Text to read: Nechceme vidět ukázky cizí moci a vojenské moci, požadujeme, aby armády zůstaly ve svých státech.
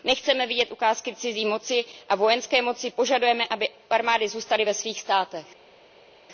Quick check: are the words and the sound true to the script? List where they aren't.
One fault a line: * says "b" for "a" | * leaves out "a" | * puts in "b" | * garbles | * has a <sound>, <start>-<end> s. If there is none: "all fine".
all fine